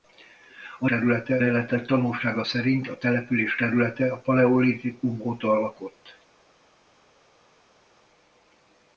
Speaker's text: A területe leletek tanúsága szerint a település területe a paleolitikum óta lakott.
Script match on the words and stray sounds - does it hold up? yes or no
yes